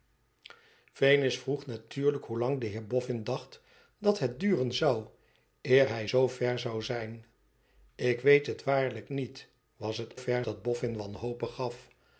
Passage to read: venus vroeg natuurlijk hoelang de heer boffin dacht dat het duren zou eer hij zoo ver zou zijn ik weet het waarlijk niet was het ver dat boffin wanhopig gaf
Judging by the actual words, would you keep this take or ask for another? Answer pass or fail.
pass